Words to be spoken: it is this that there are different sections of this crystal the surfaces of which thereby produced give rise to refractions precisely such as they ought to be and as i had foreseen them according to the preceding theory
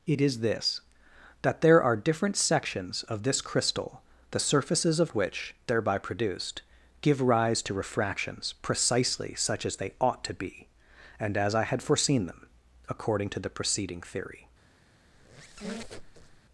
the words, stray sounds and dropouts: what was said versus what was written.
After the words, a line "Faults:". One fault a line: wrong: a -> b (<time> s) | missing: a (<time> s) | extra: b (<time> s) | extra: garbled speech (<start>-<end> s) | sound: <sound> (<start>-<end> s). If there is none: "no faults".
it is this that there are different sections of this crystal the surfaces of which thereby produced give rise to refractions precisely such as they ought to be and as i had foreseen them according to the preceding theory
Faults:
sound: squeak (15.1-16.4 s)